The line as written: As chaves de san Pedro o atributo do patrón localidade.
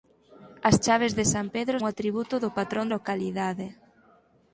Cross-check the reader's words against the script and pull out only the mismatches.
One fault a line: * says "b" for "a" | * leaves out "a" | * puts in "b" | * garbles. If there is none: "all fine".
all fine